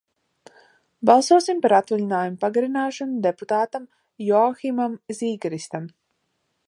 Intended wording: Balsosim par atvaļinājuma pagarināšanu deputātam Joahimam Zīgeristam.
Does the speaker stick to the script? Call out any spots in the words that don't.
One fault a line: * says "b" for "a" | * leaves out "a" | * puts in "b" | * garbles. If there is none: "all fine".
all fine